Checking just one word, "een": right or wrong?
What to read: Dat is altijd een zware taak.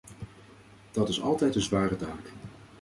right